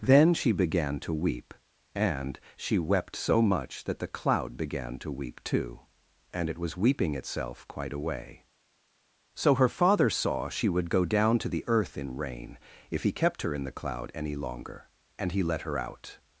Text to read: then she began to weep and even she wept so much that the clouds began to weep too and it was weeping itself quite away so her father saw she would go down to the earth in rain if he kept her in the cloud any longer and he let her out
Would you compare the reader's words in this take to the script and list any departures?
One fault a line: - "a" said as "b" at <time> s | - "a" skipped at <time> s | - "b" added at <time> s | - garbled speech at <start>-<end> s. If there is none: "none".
- "even" skipped at 2.4 s
- "clouds" said as "cloud" at 4.1 s